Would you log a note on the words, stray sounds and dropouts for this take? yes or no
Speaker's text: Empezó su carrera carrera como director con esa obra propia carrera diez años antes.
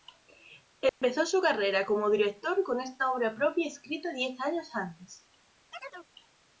yes